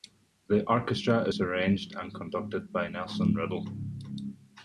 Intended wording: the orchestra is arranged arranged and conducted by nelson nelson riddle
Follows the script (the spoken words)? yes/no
no